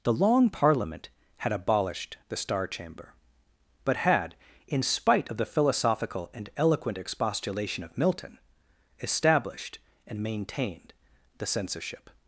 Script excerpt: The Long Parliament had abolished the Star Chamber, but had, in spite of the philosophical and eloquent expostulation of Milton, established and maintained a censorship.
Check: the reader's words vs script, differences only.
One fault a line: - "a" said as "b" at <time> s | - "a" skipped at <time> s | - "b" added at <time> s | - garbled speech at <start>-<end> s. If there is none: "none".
- "a" said as "the" at 11.4 s